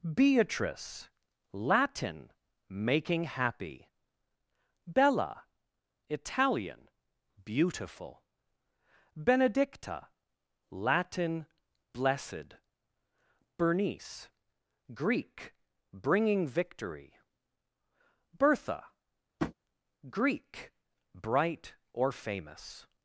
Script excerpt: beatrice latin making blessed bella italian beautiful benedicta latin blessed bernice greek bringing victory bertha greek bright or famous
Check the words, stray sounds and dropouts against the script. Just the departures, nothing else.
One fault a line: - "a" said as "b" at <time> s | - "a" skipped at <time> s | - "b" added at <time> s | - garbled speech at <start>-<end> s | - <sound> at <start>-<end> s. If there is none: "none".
- "blessed" said as "happy" at 3.2 s
- tap at 19.4-19.5 s